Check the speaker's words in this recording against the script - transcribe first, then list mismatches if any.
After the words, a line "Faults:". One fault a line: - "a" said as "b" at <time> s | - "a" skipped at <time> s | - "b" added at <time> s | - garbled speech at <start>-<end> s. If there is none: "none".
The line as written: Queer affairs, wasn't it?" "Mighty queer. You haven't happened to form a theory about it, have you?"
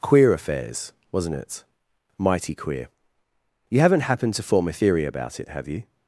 Queer affairs, wasn't it?" "Mighty queer. You haven't happened to form a theory about it, have you?"
Faults:
none